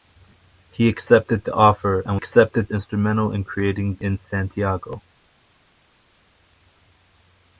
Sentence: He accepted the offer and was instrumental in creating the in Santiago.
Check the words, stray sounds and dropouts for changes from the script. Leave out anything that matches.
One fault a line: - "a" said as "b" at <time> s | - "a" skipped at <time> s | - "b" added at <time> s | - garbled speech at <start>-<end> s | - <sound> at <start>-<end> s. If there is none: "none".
- "was" said as "accepted" at 2.1 s
- "the" skipped at 4.0 s